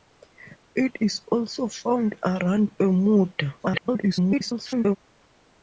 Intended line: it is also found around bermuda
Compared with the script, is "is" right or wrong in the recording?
right